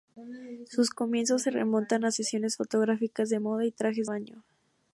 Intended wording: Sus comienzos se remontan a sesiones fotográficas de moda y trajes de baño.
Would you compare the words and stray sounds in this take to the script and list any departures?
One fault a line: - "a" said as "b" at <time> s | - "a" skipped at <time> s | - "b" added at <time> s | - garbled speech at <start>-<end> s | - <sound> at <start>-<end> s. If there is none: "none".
- "de" skipped at 4.1 s